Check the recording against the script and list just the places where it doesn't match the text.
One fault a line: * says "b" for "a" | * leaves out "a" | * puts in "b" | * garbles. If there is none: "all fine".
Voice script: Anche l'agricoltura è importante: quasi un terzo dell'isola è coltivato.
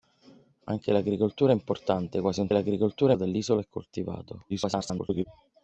* says "l'agricoltura" for "terzo"
* garbles